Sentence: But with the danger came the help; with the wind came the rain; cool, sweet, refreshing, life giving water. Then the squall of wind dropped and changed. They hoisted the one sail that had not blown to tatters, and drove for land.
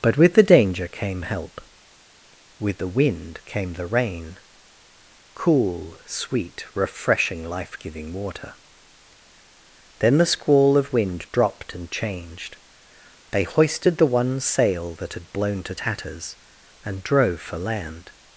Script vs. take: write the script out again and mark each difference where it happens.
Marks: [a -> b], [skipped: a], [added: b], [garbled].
But with the danger came [skipped: the] help; with the wind came the rain; cool, sweet, refreshing, life giving water. Then the squall of wind dropped and changed. They hoisted the one sail that had [skipped: not] blown to tatters, and drove for land.